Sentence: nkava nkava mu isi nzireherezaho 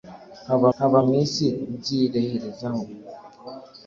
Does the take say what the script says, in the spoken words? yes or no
yes